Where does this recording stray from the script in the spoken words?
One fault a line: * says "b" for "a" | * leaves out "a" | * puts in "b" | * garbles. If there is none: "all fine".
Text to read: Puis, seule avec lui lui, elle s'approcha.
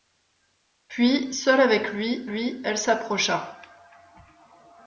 all fine